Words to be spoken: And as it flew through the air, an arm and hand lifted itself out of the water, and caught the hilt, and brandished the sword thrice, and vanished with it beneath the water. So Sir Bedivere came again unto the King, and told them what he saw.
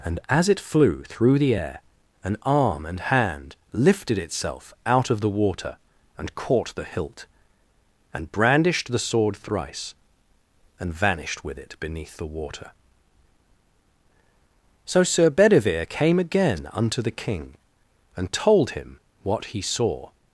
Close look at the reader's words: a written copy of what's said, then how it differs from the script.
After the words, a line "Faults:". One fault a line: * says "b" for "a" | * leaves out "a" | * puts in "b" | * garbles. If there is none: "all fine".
And as it flew through the air, an arm and hand lifted itself out of the water, and caught the hilt, and brandished the sword thrice, and vanished with it beneath the water. So Sir Bedivere came again unto the King, and told him what he saw.
Faults:
* says "him" for "them"